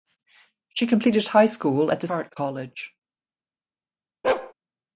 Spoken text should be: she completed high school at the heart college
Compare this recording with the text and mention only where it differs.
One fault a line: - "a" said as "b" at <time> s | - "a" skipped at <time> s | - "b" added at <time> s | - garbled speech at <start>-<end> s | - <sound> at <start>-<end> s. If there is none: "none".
- bark at 4.2-4.5 s